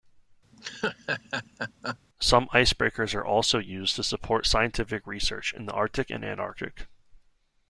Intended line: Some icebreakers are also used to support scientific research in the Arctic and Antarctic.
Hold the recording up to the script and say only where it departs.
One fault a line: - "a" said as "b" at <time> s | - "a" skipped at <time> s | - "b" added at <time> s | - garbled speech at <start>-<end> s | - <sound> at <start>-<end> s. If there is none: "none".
- laugh at 0.5-2.0 s